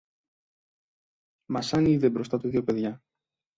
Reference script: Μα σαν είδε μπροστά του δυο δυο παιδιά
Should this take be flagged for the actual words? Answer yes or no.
yes